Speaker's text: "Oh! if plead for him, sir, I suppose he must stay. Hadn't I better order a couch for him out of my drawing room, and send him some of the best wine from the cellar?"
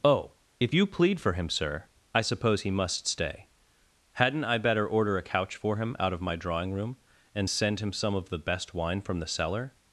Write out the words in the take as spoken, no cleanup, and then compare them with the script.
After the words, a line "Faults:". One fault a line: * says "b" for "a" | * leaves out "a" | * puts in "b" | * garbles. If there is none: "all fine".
"Oh! if you plead for him, sir, I suppose he must stay. Hadn't I better order a couch for him out of my drawing room, and send him some of the best wine from the cellar?"
Faults:
* puts in "you"